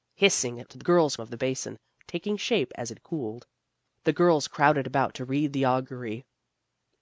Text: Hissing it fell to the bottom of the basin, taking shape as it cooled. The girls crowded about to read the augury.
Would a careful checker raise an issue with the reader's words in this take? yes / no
yes